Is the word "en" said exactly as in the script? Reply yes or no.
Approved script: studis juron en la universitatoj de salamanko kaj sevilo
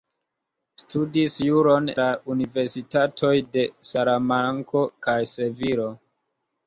no